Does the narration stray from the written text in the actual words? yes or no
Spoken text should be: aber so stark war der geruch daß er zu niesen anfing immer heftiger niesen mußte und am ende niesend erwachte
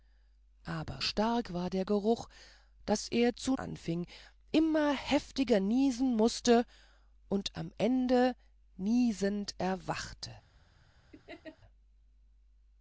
yes